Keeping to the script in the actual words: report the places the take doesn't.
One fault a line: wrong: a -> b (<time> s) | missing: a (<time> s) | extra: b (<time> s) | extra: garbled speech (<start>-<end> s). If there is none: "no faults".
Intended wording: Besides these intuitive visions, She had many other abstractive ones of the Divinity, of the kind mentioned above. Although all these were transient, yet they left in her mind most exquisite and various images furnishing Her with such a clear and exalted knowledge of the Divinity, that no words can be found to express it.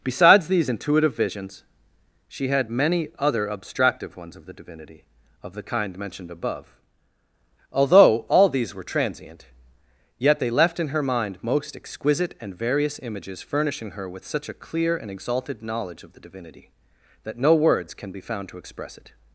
no faults